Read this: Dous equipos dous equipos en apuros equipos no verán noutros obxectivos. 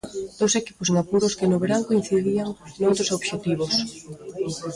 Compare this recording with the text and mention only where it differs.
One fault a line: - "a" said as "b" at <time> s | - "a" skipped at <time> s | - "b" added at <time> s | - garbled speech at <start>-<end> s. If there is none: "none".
- "dous equipos" skipped at 0.9 s
- "equipos" said as "que" at 1.4 s
- "coincidían" added at 1.9 s